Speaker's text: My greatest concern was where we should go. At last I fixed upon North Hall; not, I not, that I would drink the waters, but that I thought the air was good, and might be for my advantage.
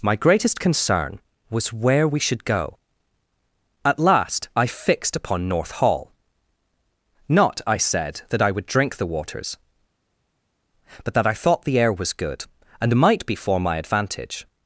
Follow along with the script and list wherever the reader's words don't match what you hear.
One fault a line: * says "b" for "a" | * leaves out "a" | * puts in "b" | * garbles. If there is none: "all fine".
* says "said" for "not"